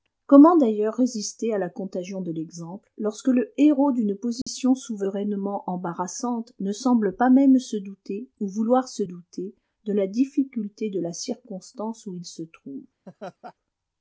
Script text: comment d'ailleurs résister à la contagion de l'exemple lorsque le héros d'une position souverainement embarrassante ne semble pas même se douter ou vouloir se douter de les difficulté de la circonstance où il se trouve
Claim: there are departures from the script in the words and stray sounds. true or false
true